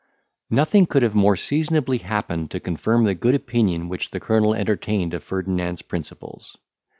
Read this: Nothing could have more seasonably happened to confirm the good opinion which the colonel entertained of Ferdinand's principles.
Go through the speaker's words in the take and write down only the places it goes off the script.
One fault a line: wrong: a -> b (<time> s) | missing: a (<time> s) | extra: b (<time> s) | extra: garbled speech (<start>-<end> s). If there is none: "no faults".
no faults